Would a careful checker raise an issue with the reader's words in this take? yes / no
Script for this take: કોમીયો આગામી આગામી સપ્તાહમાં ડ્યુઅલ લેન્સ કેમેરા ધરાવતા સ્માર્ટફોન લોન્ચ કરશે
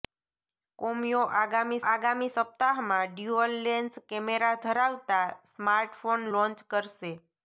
no